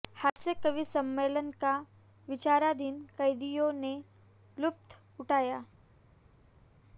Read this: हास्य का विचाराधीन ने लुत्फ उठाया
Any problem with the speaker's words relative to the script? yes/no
yes